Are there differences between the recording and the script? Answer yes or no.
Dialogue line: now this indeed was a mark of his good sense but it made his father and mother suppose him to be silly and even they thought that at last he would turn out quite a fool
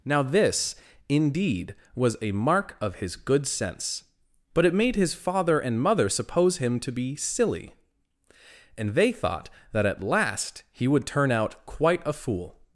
yes